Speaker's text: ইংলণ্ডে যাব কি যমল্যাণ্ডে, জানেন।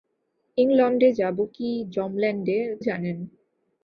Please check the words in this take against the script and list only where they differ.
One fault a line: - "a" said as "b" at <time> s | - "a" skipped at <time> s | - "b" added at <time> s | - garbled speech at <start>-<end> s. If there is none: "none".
none